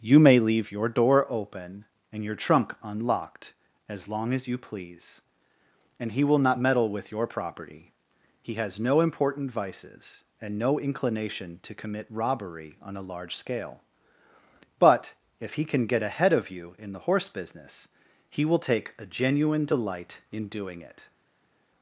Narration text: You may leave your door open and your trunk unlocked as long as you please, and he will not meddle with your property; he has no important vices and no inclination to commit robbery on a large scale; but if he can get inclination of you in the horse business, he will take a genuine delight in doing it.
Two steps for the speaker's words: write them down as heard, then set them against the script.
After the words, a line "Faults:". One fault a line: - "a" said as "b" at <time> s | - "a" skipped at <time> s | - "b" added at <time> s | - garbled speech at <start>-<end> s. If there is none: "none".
You may leave your door open and your trunk unlocked as long as you please, and he will not meddle with your property; he has no important vices and no inclination to commit robbery on a large scale; but if he can get ahead of you in the horse business, he will take a genuine delight in doing it.
Faults:
- "inclination" said as "ahead" at 16.0 s